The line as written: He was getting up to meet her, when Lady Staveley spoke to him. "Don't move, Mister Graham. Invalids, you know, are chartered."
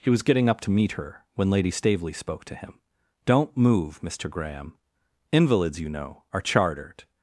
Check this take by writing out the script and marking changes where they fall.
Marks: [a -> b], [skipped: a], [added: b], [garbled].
He was getting up to meet her, when Lady Staveley spoke to him. "Don't move, Mister Graham. Invalids, you know, are chartered."